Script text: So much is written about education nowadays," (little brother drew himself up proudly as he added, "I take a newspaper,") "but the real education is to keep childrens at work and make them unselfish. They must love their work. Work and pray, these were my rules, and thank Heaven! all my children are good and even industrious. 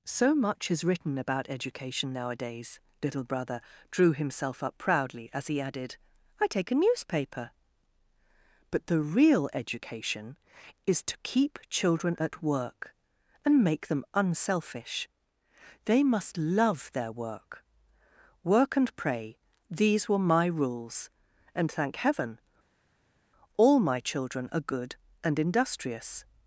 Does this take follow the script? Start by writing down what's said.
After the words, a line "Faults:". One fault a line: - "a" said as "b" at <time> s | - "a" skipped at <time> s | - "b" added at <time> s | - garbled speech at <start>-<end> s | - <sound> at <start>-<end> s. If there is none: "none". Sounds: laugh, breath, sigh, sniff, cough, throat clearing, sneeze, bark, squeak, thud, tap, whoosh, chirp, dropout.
So much is written about education nowadays," (little brother drew himself up proudly as he added, "I take a newspaper,") "but the real education is to keep children at work and make them unselfish. They must love their work. Work and pray, these were my rules, and thank Heaven! all my children are good and industrious.
Faults:
- "childrens" said as "children" at 11.7 s
- "even" skipped at 25.4 s